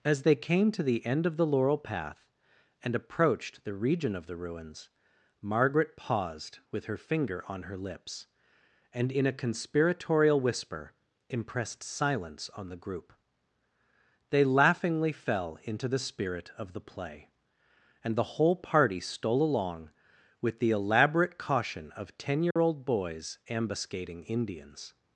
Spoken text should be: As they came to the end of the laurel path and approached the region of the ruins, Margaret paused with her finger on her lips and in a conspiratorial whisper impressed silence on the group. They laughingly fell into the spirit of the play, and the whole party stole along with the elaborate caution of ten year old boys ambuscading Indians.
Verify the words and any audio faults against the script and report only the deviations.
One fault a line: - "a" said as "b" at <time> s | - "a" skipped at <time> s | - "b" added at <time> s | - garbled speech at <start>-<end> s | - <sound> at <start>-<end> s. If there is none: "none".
- dropout at 22.5-22.6 s